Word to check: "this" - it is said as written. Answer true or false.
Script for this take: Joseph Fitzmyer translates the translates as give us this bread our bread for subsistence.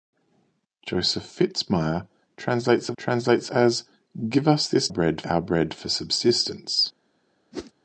true